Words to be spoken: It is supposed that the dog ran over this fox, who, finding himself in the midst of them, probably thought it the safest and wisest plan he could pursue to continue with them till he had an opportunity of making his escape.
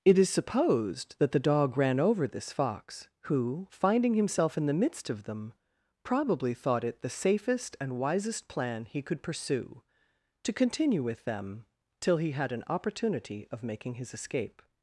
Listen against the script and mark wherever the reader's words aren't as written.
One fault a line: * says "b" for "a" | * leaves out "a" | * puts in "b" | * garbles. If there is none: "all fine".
all fine